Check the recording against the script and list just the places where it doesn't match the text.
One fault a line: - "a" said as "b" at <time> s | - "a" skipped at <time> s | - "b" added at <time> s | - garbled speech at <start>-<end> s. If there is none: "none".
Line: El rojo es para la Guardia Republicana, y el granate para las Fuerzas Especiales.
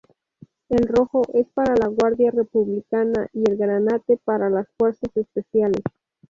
none